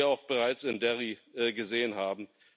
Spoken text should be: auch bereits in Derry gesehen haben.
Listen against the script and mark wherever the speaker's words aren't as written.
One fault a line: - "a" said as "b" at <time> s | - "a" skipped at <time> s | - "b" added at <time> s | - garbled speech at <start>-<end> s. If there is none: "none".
none